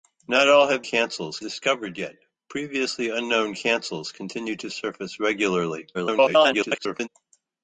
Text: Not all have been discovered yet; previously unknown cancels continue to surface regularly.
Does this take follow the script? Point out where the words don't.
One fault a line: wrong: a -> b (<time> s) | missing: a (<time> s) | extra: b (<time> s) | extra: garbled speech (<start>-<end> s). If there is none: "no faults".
wrong: been -> cancels (0.8 s)
extra: garbled speech (5.9-7.1 s)